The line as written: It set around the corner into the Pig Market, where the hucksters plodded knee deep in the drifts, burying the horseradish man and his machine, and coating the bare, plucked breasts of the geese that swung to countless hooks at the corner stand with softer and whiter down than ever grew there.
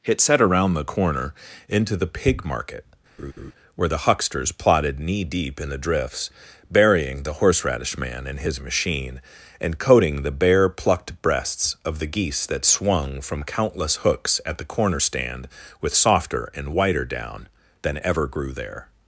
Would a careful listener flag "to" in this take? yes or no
yes